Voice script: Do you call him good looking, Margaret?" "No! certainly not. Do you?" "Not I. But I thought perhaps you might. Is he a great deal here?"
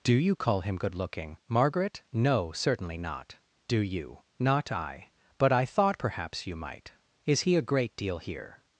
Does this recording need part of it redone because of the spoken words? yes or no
no